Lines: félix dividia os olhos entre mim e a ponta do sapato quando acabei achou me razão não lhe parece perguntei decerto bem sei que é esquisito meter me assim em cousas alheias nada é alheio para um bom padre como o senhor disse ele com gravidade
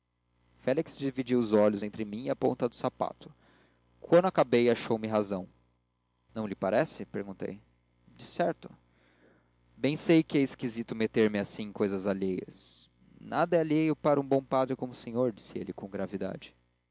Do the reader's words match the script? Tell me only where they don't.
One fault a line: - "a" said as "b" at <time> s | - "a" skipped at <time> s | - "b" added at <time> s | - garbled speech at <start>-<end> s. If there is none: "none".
none